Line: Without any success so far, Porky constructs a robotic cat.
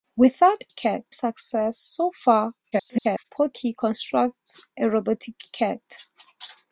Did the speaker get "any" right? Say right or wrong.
wrong